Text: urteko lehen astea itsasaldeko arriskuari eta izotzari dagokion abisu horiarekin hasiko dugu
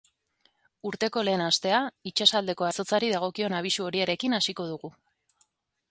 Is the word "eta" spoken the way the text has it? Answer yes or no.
no